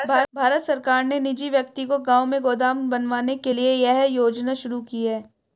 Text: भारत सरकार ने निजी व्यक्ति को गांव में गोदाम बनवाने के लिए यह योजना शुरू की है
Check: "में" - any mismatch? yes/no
no